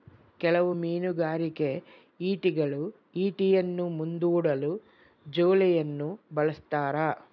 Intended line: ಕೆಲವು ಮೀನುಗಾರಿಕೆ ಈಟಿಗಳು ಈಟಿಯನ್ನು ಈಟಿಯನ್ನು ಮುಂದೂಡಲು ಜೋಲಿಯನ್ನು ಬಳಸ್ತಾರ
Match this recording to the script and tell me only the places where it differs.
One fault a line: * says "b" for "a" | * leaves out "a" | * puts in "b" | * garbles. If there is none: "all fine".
* leaves out "ಈಟಿಯನ್ನು"